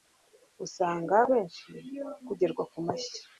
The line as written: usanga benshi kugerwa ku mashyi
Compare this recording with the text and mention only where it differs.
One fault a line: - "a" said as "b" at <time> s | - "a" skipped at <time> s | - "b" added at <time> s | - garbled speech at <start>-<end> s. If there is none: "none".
none